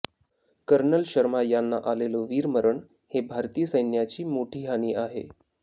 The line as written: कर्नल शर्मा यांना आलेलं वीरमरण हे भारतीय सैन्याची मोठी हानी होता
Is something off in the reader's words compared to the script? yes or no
yes